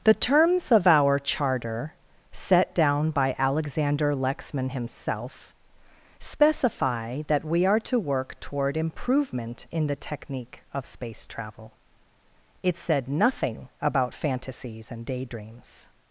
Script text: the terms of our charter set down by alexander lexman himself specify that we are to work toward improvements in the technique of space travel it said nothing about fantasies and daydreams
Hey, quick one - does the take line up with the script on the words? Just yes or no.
no